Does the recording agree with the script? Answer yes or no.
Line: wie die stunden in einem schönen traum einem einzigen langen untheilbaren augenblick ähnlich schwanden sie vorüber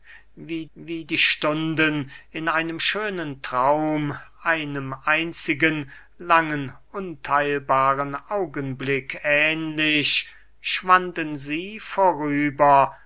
no